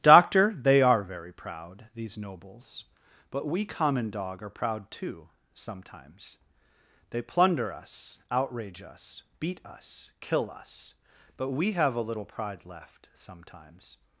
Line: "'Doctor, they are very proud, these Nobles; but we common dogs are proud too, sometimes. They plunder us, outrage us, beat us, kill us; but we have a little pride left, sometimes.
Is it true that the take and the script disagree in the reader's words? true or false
true